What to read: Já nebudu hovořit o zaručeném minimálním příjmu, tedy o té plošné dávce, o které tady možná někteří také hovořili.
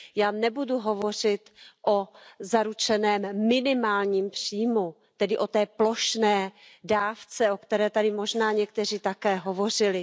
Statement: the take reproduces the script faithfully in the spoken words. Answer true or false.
true